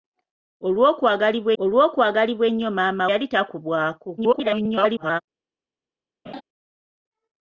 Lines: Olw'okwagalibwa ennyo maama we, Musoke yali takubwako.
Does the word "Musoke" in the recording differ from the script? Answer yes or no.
yes